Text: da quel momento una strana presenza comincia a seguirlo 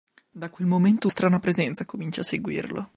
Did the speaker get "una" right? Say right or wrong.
wrong